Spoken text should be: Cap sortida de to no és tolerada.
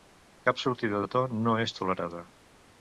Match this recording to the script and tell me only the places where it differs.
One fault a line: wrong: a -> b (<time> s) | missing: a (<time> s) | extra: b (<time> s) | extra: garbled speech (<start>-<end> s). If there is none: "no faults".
no faults